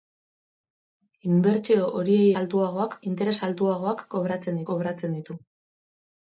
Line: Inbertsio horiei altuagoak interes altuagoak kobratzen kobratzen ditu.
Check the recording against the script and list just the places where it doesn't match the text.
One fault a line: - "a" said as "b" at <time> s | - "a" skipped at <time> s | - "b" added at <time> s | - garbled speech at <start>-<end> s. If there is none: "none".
none